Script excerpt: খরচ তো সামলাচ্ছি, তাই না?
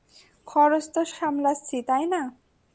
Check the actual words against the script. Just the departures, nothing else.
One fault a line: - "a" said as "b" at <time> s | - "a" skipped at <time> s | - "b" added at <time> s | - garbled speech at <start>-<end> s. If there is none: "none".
none